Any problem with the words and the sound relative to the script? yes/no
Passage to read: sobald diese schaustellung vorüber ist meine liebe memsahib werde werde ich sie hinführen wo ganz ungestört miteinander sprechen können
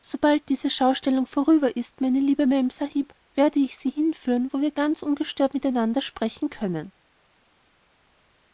yes